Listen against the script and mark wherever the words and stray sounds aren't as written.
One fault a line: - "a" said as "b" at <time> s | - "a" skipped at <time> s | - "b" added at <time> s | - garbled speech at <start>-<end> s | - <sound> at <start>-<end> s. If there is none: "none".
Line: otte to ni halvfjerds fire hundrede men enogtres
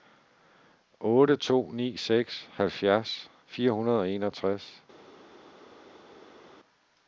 - "seks" added at 2.0 s
- "men" said as "og" at 4.0 s